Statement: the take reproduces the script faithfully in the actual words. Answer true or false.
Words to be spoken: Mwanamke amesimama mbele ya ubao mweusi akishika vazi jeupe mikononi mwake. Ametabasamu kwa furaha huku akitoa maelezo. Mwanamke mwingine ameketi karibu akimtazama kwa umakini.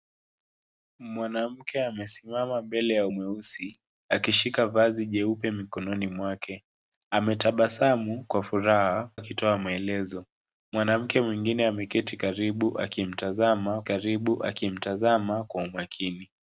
false